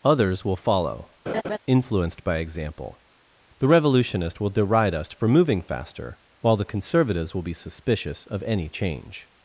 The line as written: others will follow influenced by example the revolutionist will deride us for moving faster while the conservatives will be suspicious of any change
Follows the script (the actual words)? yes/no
yes